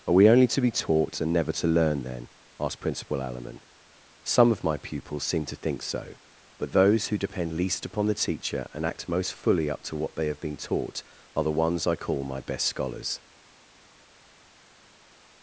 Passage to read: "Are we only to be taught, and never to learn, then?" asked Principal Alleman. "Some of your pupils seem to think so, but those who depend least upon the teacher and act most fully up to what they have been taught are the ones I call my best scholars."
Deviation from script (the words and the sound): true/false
true